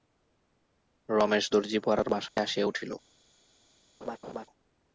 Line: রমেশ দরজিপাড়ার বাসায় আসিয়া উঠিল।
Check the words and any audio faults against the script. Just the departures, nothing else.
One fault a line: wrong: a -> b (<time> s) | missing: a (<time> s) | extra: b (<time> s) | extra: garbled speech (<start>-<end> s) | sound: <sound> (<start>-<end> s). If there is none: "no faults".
sound: dropout (2.3-2.4 s)
sound: laugh (4.0-4.5 s)